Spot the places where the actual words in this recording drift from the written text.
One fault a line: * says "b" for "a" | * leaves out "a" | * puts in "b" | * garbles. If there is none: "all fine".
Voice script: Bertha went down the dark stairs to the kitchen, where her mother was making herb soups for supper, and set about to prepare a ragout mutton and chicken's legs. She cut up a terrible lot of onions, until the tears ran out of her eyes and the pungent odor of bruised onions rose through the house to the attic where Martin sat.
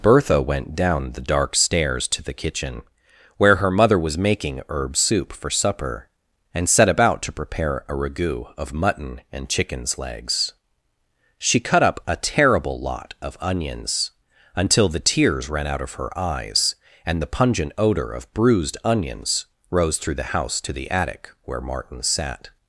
* says "soup" for "soups"
* puts in "of"